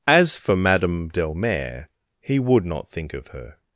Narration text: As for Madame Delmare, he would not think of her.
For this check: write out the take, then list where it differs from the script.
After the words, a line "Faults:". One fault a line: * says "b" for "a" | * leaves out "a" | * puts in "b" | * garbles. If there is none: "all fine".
As for Madame Delmare, he would not think of her.
Faults:
all fine